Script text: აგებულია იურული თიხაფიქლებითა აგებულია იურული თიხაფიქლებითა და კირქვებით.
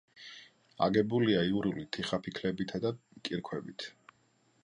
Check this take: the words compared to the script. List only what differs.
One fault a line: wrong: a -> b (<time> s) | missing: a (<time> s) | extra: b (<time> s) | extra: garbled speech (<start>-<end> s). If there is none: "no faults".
missing: აგებულია იურული თიხაფიქლებითა (2.8 s)